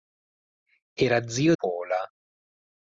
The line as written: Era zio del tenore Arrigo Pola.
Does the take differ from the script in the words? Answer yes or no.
yes